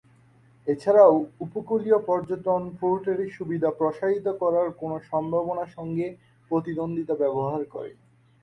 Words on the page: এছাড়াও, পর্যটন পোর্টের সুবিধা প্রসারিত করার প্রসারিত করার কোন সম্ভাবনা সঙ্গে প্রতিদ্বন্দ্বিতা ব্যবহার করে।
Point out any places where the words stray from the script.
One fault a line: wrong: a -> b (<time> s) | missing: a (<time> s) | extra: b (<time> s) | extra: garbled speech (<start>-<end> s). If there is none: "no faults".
extra: উপকূলীয় (1.4 s)
missing: প্রসারিত করার (4.7 s)